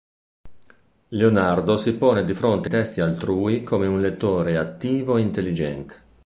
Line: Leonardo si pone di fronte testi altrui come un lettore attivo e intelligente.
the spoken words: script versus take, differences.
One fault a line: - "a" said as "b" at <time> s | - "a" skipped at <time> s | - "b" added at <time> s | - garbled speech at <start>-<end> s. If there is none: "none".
none